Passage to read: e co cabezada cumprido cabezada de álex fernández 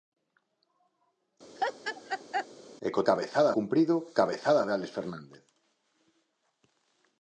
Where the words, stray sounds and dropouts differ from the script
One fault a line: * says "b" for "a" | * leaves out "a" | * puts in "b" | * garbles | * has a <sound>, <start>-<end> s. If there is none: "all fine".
* has a laugh, 1.6-2.5 s